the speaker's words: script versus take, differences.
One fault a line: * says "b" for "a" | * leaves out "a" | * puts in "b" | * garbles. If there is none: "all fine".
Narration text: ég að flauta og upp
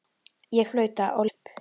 all fine